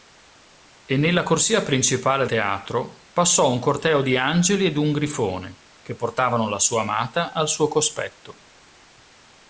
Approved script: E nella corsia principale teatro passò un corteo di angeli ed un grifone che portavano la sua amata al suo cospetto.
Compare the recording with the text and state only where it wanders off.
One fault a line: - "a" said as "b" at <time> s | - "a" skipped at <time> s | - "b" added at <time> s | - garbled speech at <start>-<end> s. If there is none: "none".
none